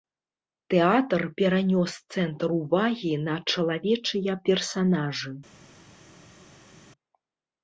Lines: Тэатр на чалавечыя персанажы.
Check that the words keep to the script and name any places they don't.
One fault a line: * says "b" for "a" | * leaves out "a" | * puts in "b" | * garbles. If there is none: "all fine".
* puts in "перанёс цэнтр увагі"